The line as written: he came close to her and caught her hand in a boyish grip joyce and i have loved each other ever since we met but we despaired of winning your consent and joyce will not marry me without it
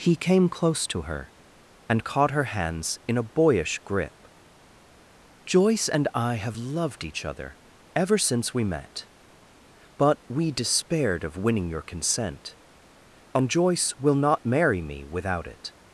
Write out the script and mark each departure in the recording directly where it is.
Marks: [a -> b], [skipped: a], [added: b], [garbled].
he came close to her and caught her [hand -> hands] in a boyish grip joyce and i have loved each other ever since we met but we despaired of winning your consent and joyce will not marry me without it